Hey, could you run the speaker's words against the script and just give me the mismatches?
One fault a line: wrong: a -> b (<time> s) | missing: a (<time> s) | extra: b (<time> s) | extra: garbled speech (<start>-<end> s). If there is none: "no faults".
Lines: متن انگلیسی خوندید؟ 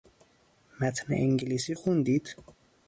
no faults